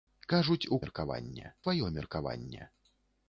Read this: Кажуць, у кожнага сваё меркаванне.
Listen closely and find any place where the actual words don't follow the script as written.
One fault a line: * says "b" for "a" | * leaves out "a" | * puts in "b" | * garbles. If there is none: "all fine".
* says "меркаванне" for "кожнага"